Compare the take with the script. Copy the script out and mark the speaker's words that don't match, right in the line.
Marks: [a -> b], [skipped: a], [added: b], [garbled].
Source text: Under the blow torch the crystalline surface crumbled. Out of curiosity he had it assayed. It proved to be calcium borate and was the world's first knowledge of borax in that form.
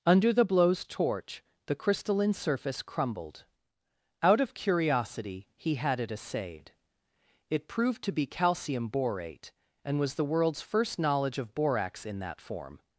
Under the [blow -> blows] torch the crystalline surface crumbled. Out of curiosity he had it assayed. It proved to be calcium borate and was the world's first knowledge of borax in that form.